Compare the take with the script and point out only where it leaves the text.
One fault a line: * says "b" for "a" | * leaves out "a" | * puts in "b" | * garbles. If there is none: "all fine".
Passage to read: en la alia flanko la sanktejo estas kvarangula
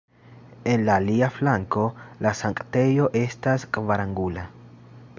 all fine